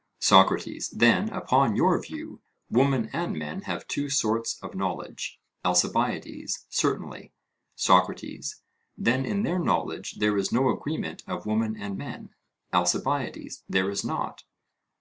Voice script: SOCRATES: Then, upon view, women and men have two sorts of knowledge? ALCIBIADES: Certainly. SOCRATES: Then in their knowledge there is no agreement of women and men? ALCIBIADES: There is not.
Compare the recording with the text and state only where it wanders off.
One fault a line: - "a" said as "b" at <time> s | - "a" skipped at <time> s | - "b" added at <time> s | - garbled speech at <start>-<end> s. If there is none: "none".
- "your" added at 1.8 s